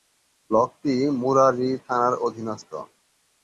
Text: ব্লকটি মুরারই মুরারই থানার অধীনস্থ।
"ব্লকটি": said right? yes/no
yes